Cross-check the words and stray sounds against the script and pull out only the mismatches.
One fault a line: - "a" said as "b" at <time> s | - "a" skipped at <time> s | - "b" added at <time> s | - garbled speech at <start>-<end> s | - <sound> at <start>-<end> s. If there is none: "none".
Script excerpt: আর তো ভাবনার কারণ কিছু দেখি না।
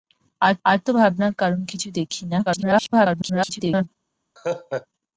- "আর" added at 0.6 s
- garbled speech at 2.5-3.9 s
- laugh at 4.4-4.9 s